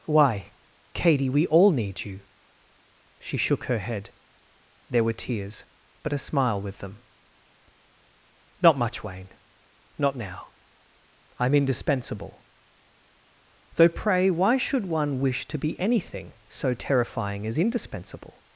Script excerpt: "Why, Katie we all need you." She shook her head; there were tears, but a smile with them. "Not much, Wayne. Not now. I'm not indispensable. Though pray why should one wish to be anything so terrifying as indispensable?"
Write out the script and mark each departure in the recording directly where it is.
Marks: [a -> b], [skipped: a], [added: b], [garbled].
"Why, Katie we all need you." She shook her head; there were tears, but a smile with them. "Not much, Wayne. Not now. I'm [skipped: not] indispensable. Though pray why should one wish to be anything so terrifying as indispensable?"